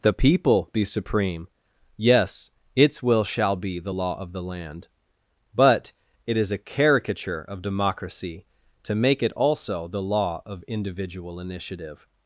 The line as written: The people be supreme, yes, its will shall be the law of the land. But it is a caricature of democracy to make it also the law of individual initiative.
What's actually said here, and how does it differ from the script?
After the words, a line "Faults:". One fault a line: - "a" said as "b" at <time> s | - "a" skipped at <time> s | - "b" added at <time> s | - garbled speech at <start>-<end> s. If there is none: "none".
The people be supreme, yes, its will shall be the law of the land. But it is a caricature of democracy to make it also the law of individual initiative.
Faults:
none